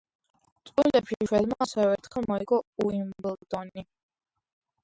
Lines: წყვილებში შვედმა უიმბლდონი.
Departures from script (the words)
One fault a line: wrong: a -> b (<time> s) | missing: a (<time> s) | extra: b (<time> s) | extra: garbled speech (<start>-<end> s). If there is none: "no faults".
extra: ასევე ერთხელ მოიგო (1.7 s)